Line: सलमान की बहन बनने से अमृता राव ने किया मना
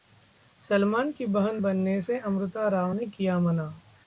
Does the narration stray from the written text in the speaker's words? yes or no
no